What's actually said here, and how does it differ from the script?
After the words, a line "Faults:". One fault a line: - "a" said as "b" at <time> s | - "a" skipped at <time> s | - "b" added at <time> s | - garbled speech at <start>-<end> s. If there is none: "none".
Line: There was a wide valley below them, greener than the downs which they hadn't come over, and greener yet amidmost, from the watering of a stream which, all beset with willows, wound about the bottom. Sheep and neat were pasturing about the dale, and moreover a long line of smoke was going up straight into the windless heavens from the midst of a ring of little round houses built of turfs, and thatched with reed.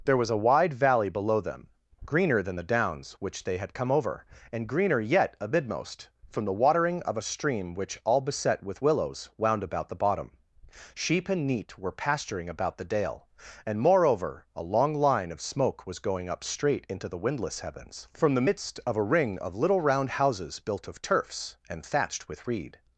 There was a wide valley below them, greener than the downs which they had come over, and greener yet amidmost, from the watering of a stream which, all beset with willows, wound about the bottom. Sheep and neat were pasturing about the dale, and moreover a long line of smoke was going up straight into the windless heavens from the midst of a ring of little round houses built of turfs, and thatched with reed.
Faults:
- "hadn't" said as "had" at 3.6 s